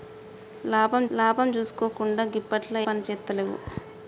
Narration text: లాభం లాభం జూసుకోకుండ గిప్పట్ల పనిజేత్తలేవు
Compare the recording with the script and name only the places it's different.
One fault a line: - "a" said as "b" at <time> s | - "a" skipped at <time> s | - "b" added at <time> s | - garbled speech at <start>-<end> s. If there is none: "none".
none